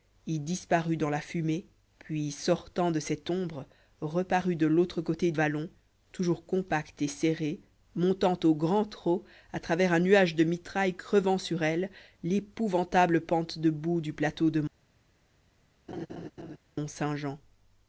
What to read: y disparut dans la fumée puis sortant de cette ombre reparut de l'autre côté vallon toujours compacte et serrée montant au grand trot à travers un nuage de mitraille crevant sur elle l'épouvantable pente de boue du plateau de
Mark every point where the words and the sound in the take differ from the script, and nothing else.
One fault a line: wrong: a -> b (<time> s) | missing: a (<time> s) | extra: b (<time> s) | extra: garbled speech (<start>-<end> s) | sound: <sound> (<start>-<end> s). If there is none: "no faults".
sound: laugh (15.9-16.6 s)